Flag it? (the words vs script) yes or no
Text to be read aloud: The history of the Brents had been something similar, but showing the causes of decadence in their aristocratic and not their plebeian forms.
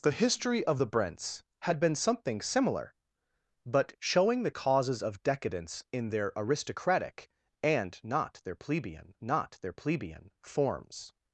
yes